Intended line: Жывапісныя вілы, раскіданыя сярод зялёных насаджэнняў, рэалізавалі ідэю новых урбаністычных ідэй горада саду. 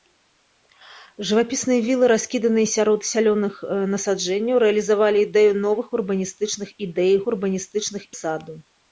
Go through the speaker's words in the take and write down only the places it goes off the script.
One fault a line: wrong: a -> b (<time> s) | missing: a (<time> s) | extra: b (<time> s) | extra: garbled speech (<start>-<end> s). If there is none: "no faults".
wrong: горада -> урбаністычных (7.3 s)